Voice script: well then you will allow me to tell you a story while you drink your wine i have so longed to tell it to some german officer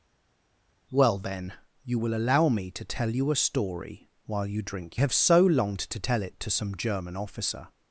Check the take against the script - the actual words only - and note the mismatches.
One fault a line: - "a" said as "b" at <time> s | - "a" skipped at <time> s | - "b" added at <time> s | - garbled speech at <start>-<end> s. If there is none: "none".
- "your wine i" skipped at 5.0 s